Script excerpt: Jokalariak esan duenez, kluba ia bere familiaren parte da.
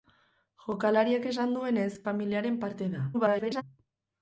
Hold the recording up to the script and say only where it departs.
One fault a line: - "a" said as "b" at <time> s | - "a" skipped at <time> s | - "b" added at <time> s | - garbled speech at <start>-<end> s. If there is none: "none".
- "kluba ia bere" skipped at 1.9 s
- garbled speech at 3.1-3.6 s